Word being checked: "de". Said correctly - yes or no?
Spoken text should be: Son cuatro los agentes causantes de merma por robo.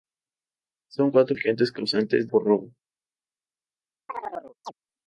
no